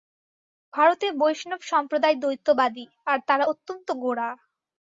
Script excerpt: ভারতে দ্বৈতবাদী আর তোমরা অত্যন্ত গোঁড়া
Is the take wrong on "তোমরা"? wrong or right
wrong